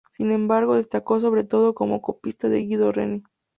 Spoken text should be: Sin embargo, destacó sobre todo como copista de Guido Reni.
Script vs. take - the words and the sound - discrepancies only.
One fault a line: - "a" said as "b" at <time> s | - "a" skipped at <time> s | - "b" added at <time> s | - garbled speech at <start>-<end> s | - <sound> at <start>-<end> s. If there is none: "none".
none